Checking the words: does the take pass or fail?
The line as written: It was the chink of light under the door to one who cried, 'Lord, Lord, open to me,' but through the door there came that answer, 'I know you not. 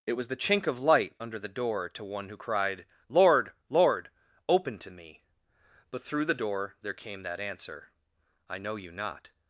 pass